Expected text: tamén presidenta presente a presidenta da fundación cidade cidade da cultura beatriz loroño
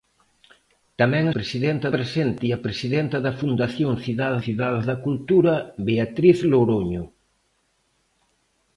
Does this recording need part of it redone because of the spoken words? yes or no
no